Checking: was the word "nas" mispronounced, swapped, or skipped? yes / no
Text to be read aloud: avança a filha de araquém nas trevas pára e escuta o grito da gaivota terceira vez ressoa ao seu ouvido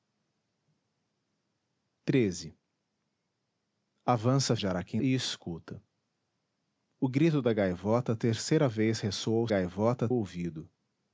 yes